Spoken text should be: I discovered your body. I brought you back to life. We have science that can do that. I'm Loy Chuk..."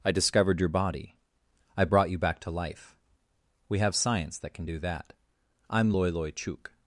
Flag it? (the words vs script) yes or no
yes